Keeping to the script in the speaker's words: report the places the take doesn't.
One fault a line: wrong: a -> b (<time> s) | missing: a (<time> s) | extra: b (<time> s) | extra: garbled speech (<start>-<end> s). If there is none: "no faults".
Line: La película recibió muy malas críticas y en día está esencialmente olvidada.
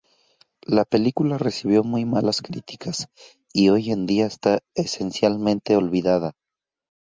extra: hoy (3.7 s)